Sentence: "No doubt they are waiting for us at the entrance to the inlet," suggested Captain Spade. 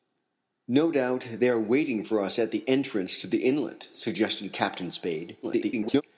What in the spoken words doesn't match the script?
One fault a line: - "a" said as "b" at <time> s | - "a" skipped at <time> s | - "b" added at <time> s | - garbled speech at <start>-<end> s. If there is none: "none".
- garbled speech at 5.4-6.0 s